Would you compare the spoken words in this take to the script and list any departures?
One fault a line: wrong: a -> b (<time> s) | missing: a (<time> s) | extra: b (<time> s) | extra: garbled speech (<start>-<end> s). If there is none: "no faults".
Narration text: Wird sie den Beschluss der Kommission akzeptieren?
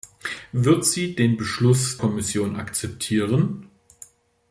missing: der (2.0 s)